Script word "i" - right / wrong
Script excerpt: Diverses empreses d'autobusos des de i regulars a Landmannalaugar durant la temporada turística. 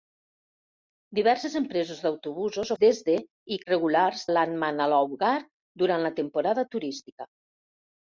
right